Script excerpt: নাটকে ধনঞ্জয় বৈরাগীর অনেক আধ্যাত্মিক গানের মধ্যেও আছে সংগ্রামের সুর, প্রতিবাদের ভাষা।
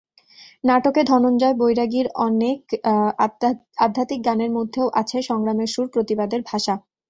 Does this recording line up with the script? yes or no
yes